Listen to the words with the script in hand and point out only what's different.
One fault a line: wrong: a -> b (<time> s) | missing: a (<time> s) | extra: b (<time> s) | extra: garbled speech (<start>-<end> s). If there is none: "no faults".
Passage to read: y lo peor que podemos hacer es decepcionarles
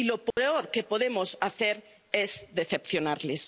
no faults